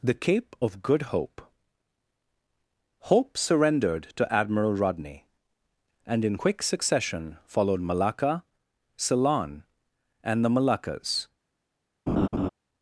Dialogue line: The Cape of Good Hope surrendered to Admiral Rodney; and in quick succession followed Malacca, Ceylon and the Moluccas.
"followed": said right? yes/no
yes